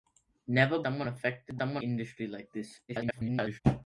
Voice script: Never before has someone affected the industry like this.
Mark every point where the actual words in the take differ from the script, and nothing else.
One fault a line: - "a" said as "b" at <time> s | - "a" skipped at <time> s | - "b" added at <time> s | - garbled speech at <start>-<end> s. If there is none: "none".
- "before has" skipped at 0.8 s
- "the" said as "someone" at 1.6 s
- garbled speech at 2.9-3.6 s